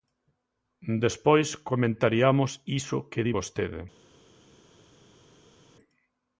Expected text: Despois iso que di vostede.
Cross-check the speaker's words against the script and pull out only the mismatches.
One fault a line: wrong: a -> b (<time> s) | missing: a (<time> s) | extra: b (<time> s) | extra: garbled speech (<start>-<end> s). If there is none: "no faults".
extra: comentariamos (1.7 s)